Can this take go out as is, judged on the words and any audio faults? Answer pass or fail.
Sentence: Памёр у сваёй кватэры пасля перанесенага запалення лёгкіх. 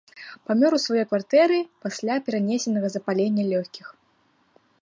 pass